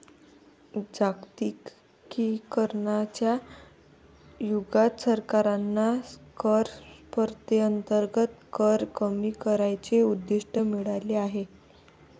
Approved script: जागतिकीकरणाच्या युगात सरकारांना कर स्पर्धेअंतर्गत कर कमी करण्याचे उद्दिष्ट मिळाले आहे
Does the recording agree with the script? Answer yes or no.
yes